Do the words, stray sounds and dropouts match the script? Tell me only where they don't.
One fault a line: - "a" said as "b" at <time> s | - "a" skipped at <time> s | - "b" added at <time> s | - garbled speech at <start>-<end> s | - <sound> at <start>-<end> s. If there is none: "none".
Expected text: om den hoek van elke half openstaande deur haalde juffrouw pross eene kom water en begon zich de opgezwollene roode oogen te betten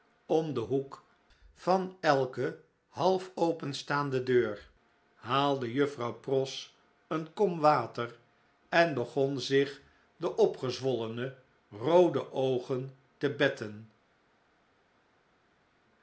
none